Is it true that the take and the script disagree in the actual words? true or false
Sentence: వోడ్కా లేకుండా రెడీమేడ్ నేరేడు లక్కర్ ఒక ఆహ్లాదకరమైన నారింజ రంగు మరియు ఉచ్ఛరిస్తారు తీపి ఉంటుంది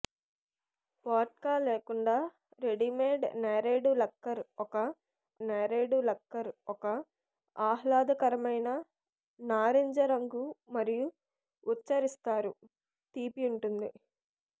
true